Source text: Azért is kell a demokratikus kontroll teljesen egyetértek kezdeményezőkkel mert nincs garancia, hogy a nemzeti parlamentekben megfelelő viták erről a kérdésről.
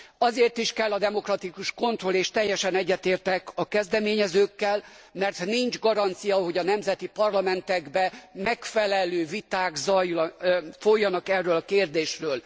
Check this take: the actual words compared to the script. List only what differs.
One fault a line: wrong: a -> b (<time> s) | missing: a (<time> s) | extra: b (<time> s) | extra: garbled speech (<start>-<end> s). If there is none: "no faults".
extra: és (2.1 s)
extra: a (3.5 s)
extra: folynak (10.8 s)